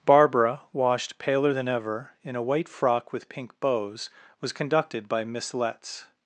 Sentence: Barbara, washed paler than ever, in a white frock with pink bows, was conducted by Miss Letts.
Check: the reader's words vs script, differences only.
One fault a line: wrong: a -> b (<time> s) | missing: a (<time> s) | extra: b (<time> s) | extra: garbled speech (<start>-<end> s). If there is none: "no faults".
no faults